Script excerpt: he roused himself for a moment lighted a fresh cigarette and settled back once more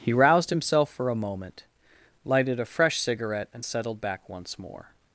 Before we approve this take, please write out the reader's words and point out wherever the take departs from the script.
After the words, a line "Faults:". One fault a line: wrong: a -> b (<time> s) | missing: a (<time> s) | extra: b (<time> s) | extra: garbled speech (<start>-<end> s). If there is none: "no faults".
he roused himself for a moment lighted a fresh cigarette and settled back once more
Faults:
no faults